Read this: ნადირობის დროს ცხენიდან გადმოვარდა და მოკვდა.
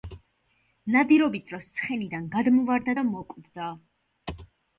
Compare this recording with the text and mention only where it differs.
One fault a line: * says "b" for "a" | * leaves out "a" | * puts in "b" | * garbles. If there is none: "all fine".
all fine